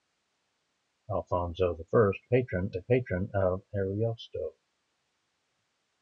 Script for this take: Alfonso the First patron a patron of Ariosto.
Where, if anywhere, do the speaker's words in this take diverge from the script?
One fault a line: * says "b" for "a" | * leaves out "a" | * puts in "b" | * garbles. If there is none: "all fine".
all fine